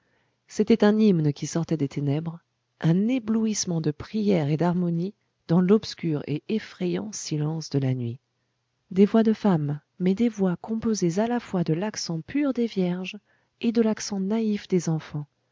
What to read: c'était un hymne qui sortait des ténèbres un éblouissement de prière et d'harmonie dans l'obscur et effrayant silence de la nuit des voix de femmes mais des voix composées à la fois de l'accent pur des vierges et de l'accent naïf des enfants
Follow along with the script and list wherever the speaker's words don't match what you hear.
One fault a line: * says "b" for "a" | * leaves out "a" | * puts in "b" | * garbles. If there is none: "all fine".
all fine